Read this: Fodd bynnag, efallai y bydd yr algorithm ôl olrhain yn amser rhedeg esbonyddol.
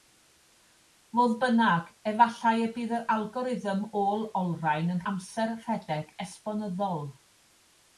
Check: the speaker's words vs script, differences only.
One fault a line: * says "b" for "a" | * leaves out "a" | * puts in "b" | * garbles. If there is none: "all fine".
all fine